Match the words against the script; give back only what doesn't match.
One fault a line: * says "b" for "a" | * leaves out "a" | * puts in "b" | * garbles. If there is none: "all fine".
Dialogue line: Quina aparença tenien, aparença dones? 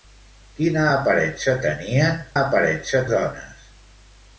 all fine